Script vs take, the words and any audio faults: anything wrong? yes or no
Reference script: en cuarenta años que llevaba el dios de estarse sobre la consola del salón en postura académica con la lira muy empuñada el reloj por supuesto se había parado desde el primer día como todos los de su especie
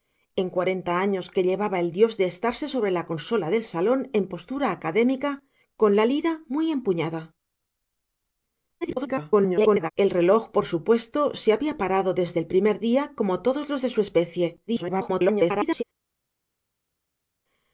yes